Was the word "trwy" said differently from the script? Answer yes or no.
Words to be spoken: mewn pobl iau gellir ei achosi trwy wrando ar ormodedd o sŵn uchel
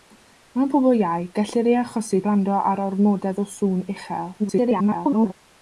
yes